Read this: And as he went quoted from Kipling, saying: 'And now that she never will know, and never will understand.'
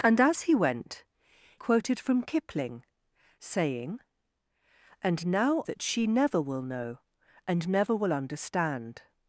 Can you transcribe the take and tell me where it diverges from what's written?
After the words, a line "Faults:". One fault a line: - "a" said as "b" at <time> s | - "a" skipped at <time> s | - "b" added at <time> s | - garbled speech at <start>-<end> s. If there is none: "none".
And as he went quoted from Kipling, saying: 'And now that she never will know, and never will understand.'
Faults:
none